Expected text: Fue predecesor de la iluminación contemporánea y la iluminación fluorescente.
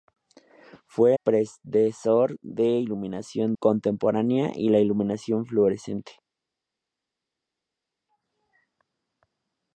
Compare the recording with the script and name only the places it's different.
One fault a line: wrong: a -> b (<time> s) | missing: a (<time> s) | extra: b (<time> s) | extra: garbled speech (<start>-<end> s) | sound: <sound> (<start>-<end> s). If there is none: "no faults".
no faults